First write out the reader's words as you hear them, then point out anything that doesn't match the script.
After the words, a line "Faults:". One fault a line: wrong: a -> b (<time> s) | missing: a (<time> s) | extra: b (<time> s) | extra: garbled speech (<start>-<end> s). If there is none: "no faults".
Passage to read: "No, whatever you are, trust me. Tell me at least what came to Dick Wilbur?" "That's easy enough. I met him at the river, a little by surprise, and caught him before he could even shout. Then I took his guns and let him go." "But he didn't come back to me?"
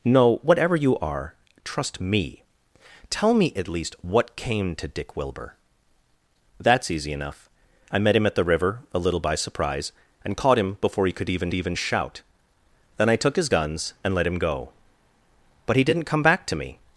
"No, whatever you are, trust me. Tell me at least what came to Dick Wilbur?" "That's easy enough. I met him at the river, a little by surprise, and caught him before he could even even shout. Then I took his guns and let him go." "But he didn't come back to me?"
Faults:
extra: even (11.5 s)